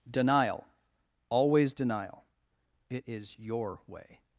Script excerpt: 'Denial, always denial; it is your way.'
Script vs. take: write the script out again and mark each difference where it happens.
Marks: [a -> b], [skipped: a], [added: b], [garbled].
'Denial, always denial; it is your way.'